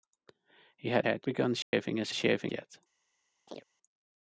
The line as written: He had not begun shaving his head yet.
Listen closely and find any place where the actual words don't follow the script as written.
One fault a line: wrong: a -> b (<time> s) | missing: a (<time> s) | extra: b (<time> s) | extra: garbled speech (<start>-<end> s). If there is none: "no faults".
wrong: not -> head (1.0 s)
wrong: head -> shaving (2.1 s)